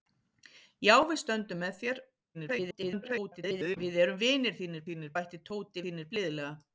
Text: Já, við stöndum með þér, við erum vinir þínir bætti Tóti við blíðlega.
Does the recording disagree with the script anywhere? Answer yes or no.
yes